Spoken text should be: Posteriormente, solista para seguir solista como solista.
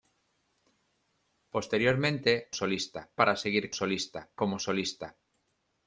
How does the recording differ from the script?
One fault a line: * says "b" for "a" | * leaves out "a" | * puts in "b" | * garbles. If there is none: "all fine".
all fine